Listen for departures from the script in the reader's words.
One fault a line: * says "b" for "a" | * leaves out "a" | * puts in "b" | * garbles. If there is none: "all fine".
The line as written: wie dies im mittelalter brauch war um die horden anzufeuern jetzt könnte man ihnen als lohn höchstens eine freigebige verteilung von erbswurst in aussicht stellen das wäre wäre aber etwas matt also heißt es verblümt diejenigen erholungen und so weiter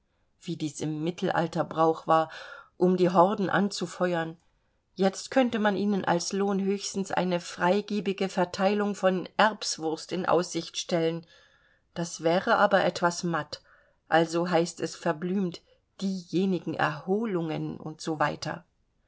* leaves out "wäre"